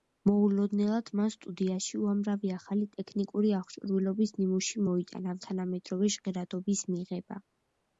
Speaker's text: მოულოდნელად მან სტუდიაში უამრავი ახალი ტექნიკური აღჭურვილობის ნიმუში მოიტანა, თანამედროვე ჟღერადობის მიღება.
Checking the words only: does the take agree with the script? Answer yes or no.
yes